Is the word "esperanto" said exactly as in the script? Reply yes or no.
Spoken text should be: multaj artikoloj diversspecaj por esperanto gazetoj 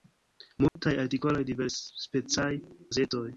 no